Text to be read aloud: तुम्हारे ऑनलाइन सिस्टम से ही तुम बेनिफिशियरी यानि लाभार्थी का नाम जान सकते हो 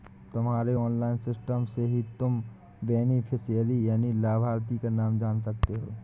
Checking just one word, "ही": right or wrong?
right